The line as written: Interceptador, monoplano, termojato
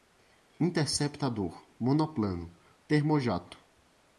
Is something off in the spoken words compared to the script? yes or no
no